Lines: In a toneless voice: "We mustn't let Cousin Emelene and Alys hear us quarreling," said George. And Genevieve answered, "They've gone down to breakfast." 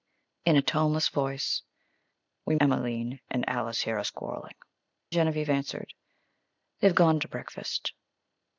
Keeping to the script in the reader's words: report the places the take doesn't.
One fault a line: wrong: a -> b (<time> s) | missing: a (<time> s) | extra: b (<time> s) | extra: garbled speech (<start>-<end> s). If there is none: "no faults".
missing: mustn't let Cousin (2.5 s)
missing: said George And (4.5 s)
missing: down (7.2 s)